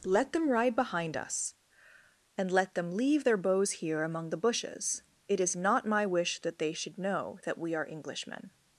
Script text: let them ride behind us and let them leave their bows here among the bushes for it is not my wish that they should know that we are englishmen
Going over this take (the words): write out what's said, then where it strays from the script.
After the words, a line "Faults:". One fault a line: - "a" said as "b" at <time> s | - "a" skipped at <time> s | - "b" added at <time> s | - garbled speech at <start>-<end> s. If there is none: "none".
let them ride behind us and let them leave their bows here among the bushes it is not my wish that they should know that we are englishmen
Faults:
- "for" skipped at 5.0 s